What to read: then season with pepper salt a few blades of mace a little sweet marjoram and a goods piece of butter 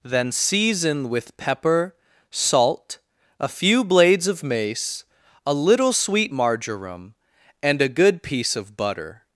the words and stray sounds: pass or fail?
fail